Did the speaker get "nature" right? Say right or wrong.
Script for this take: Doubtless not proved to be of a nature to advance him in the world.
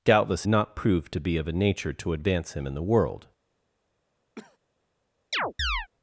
right